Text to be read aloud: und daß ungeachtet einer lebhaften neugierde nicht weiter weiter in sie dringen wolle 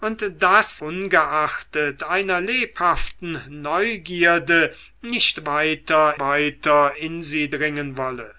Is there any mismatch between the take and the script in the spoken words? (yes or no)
no